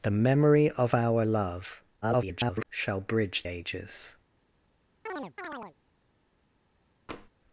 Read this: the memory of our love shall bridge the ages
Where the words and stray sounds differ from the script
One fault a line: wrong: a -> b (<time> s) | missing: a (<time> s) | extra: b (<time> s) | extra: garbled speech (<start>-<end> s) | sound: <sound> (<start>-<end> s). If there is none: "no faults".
extra: garbled speech (2.0-2.6 s)
missing: the (3.5 s)
sound: chirp (5.1-5.8 s)
sound: tap (7.1-7.3 s)